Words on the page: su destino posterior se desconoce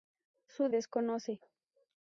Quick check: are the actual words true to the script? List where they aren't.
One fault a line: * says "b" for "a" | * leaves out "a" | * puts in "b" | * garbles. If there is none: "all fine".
* leaves out "destino posterior se"